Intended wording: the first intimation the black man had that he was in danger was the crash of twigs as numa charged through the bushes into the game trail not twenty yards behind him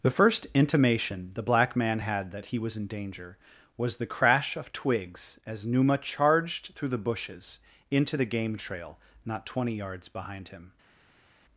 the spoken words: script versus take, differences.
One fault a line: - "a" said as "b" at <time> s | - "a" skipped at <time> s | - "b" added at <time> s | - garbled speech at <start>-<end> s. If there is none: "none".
none